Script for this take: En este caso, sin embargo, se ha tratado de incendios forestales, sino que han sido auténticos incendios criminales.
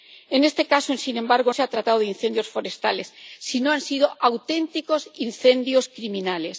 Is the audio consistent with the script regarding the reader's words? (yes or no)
yes